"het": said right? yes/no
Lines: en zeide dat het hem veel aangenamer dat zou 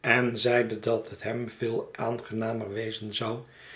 yes